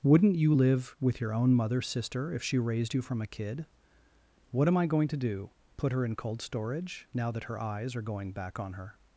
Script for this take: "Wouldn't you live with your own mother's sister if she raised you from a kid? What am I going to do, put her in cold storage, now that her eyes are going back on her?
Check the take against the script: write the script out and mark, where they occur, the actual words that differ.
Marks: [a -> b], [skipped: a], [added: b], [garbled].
"Wouldn't you live with your own mother's sister if she raised you from a kid? What am I going to do, put her in cold storage, now that her eyes are going back on her?